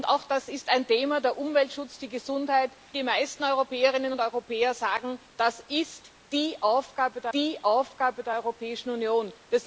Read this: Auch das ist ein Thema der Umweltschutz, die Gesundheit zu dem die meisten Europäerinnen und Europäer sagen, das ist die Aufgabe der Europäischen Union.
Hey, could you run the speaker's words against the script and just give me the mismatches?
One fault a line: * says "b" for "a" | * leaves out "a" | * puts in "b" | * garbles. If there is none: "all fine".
* leaves out "zu dem"
* puts in "die Aufgabe der"